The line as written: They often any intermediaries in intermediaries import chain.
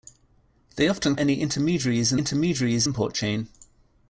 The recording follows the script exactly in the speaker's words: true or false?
true